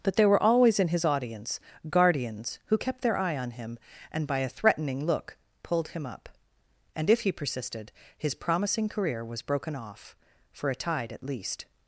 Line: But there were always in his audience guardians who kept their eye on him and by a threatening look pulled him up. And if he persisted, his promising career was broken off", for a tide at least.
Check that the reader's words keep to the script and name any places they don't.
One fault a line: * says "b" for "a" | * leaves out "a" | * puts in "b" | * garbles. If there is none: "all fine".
all fine